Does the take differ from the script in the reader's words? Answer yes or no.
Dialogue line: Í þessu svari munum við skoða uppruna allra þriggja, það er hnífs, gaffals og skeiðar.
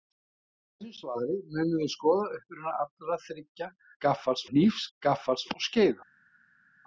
yes